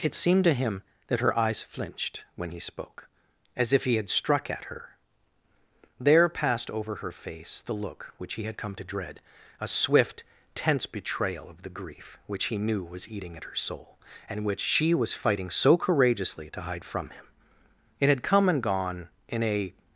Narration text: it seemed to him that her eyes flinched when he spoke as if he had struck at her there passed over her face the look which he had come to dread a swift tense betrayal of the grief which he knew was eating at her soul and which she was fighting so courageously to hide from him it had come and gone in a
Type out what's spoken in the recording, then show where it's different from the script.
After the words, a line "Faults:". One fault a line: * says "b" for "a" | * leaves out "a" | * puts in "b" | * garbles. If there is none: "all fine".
it seemed to him that her eyes flinched when he spoke as if he had struck at her there passed over her face the look which he had come to dread a swift tense betrayal of the grief which he knew was eating at her soul and which she was fighting so courageously to hide from him it had come and gone in a
Faults:
all fine